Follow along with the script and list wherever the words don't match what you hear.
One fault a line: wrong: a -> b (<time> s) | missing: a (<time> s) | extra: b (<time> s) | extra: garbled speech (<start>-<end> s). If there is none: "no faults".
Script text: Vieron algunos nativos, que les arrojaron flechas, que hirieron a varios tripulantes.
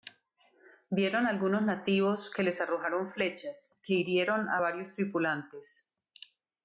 no faults